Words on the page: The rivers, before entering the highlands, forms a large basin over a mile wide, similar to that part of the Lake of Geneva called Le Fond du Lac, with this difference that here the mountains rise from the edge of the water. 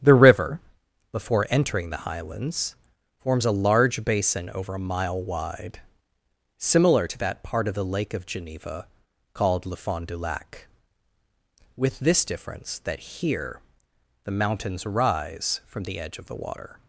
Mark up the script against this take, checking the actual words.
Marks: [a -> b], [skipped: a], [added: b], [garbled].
The [rivers, -> river] before entering the highlands, forms a large basin over a mile wide, similar to that part of the Lake of Geneva called Le Fond du Lac, with this difference that here the mountains rise from the edge of the water.